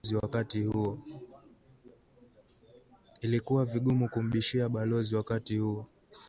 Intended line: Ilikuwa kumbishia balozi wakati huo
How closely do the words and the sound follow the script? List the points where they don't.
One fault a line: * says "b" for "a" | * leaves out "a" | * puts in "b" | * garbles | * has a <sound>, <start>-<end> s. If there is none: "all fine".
* puts in "vigumu"